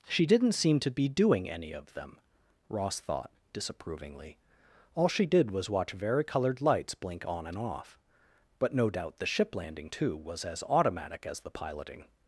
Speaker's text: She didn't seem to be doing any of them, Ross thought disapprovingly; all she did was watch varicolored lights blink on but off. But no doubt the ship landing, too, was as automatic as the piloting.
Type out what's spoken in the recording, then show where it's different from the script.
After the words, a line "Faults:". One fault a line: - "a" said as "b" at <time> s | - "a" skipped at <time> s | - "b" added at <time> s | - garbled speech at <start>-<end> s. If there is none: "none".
She didn't seem to be doing any of them, Ross thought disapprovingly; all she did was watch varicolored lights blink on and off. But no doubt the ship landing, too, was as automatic as the piloting.
Faults:
- "but" said as "and" at 7.5 s